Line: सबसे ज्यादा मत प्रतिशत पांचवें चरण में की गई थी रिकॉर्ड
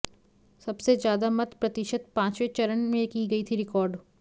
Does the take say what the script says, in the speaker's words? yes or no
yes